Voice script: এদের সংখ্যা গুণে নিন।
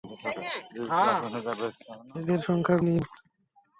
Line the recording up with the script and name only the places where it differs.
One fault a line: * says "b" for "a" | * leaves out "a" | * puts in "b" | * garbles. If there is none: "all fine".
* leaves out "গুণে"